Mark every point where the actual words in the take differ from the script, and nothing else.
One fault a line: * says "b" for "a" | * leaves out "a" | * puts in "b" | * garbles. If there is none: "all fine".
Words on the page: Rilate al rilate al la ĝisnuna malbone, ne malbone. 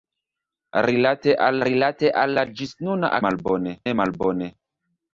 all fine